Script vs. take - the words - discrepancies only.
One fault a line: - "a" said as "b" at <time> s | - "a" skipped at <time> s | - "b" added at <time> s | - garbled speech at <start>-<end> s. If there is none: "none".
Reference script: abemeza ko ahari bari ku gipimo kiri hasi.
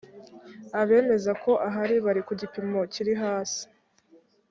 none